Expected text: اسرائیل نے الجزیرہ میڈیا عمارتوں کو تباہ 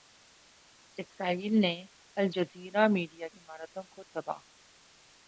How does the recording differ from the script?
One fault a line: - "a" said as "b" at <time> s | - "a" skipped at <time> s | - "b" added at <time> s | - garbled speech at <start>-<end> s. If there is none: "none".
none